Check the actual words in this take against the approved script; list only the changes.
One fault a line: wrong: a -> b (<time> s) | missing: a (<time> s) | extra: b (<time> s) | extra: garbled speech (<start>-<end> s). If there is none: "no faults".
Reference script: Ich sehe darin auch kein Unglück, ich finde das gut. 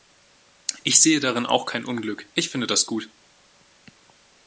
no faults